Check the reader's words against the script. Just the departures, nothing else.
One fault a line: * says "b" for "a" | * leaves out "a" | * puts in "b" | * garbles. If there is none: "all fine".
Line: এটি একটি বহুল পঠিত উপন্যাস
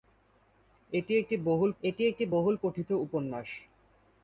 * puts in "এটি একটি বহুল"